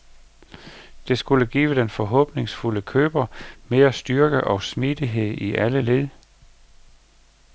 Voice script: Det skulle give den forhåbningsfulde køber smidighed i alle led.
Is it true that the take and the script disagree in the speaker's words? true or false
true